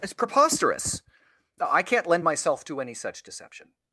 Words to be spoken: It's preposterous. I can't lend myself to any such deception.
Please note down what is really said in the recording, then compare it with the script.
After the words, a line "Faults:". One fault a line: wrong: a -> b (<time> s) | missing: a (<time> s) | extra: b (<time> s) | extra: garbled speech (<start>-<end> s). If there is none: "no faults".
It's preposterous. I can't lend myself to any such deception.
Faults:
no faults